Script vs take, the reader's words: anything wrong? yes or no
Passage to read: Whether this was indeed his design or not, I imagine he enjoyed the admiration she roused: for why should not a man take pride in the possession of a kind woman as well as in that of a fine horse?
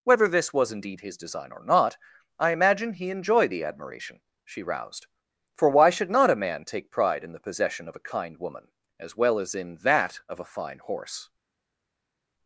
no